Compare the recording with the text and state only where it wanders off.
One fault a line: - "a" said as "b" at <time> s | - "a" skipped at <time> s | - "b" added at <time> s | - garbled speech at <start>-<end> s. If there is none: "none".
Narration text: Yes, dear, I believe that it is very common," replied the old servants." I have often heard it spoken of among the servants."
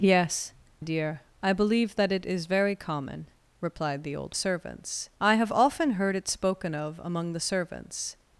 none